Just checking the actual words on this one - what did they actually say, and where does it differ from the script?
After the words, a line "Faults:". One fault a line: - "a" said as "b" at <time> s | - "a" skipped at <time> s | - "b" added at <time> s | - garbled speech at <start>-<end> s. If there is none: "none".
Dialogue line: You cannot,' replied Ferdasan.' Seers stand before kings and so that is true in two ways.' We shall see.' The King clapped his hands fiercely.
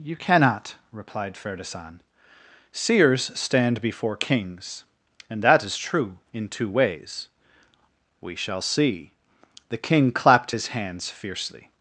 You cannot,' replied Ferdasan.' Seers stand before kings and that is true in two ways.' We shall see.' The King clapped his hands fiercely.
Faults:
- "so" skipped at 5.4 s